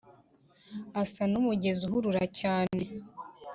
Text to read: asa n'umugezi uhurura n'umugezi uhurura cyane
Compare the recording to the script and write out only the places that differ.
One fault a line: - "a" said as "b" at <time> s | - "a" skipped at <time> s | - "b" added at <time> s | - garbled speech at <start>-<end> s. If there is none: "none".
- "n'umugezi uhurura" skipped at 2.2 s